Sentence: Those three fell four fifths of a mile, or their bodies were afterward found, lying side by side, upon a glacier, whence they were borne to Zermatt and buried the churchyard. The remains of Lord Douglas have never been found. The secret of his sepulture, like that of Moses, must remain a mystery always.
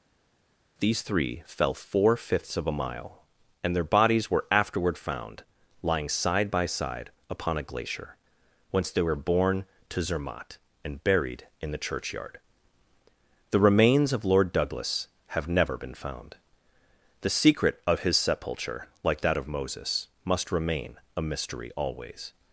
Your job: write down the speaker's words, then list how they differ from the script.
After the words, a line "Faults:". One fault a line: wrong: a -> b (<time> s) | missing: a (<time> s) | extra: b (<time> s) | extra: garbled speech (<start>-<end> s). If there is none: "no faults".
These three fell four fifths of a mile, and their bodies were afterward found, lying side by side, upon a glacier, whence they were borne to Zermatt and buried in the churchyard. The remains of Lord Douglas have never been found. The secret of his sepulture, like that of Moses, must remain a mystery always.
Faults:
wrong: Those -> These (0.8 s)
wrong: or -> and (3.6 s)
extra: in (11.6 s)